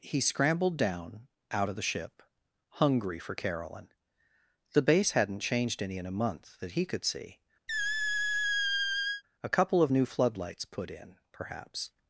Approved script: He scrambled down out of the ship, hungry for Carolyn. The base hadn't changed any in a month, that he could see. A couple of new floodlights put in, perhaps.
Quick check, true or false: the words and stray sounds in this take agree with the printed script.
false